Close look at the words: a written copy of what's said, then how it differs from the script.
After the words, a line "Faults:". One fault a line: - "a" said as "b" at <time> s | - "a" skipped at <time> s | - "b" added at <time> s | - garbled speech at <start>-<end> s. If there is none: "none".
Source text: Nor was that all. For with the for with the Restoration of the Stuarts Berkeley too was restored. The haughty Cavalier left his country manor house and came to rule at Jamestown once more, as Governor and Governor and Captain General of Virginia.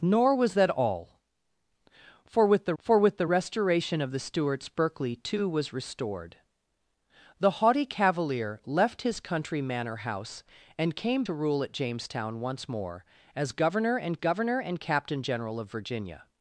Nor was that all. For with the for with the Restoration of the Stuarts Berkeley too was restored. The haughty Cavalier left his country manor house and came to rule at Jamestown once more, as Governor and Governor and Captain General of Virginia.
Faults:
none